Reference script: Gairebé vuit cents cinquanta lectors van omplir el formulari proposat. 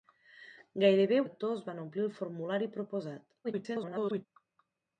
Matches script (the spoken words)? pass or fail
fail